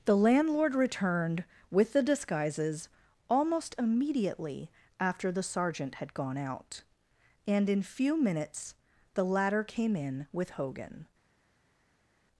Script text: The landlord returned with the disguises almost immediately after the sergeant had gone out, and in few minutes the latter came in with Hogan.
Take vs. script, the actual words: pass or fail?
pass